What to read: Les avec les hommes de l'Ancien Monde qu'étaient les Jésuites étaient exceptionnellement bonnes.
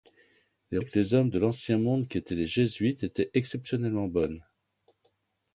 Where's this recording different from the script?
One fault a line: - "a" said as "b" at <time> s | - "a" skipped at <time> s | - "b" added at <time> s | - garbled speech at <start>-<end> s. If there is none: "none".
none